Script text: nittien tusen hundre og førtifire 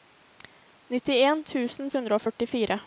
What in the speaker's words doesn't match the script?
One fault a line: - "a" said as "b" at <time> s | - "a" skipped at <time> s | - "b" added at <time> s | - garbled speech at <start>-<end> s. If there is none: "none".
none